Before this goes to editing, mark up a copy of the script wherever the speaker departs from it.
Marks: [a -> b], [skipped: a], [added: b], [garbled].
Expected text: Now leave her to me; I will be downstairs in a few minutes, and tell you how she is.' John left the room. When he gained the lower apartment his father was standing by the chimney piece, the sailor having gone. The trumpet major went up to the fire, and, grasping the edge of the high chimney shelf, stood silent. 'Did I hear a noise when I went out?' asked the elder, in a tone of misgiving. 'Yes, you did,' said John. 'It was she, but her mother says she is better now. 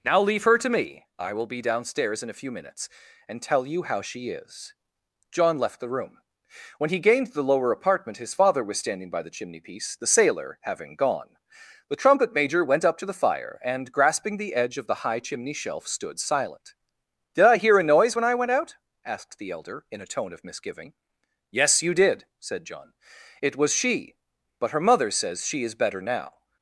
Now leave her to me; I will be downstairs in a few minutes, and tell you how she is.' John left the room. When he gained the lower apartment his father was standing by the chimney piece, the sailor having gone. The trumpet major went up to the fire, and, grasping the edge of the high chimney shelf, stood silent. 'Did I hear a noise when I went out?' asked the elder, in a tone of misgiving. 'Yes, you did,' said John. 'It was she, but her mother says she is better now.